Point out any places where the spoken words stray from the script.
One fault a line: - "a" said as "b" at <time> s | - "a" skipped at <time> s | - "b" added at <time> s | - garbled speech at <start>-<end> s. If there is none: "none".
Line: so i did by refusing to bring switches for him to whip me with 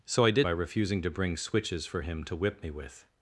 none